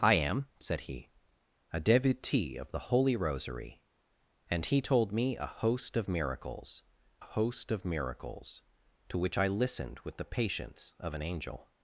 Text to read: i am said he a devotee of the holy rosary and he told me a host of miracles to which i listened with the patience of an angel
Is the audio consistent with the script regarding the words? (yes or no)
no